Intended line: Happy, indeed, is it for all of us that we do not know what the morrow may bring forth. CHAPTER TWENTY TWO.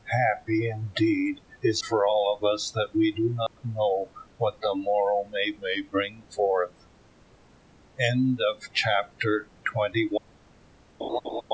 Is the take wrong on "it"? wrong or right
wrong